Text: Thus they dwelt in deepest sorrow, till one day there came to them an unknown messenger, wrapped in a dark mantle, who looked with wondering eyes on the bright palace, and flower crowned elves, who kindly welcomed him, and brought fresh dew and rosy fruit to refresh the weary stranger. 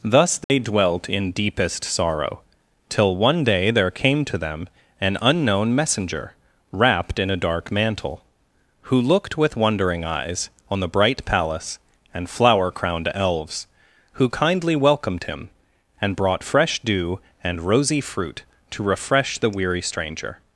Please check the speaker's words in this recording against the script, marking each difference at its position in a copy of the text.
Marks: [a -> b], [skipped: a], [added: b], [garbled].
Thus they dwelt in deepest sorrow, till one day there came to them an unknown messenger, wrapped in a dark mantle, who looked with wondering eyes on the bright palace, and flower crowned elves, who kindly welcomed him, and brought fresh dew and rosy fruit to refresh the weary stranger.